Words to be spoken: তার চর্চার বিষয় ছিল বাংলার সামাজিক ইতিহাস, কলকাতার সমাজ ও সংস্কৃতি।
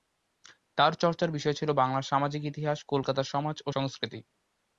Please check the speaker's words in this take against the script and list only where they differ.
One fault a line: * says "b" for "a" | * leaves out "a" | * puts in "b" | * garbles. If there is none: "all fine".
all fine